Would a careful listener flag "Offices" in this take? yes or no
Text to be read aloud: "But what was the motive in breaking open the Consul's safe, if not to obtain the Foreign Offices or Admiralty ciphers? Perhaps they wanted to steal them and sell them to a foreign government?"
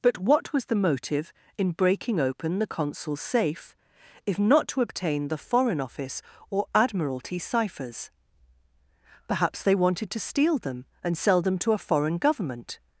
yes